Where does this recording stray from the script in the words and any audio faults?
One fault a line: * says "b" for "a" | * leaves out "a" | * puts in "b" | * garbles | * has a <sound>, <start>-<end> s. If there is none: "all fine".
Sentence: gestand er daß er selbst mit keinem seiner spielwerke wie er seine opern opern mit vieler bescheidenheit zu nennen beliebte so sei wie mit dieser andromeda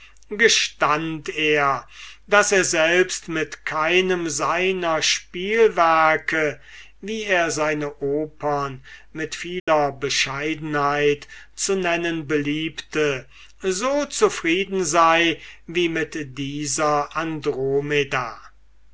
* leaves out "opern"
* has a dropout, 9.6-9.7 s
* puts in "zufrieden"